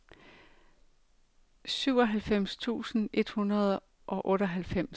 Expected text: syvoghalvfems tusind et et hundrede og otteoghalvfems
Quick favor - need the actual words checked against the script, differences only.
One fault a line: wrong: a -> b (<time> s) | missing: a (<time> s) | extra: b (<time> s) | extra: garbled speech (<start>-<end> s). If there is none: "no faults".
missing: et (3.3 s)